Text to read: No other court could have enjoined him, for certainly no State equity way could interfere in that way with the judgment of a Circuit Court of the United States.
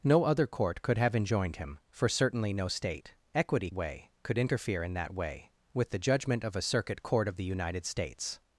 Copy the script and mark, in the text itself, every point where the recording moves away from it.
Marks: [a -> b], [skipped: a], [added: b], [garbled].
No other court could have enjoined him, for certainly no State equity way could interfere in that way with the judgment of a Circuit Court of the United States.